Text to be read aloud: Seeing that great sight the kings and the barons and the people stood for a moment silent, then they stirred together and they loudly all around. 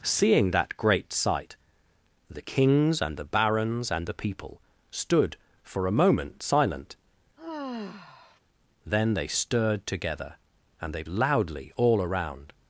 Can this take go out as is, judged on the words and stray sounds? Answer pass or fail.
fail